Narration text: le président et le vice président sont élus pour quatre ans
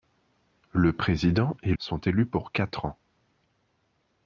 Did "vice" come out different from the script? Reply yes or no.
yes